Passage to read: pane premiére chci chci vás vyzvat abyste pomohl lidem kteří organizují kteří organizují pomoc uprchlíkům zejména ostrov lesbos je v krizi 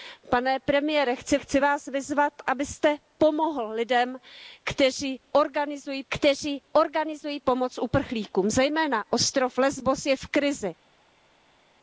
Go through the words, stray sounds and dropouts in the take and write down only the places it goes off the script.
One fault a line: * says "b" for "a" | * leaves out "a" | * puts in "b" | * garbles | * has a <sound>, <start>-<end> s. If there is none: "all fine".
all fine